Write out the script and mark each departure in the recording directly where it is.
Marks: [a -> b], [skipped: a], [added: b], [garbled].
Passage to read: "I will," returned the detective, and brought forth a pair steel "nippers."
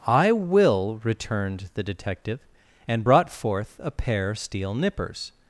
"I will," returned the detective, and brought forth a pair steel "nippers."